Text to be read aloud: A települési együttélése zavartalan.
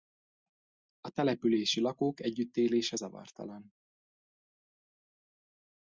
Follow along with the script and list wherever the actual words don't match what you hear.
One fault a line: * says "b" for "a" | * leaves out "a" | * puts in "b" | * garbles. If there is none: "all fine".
* puts in "lakók"